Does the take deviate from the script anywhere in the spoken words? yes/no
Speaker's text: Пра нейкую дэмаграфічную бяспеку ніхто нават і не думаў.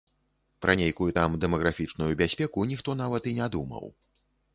yes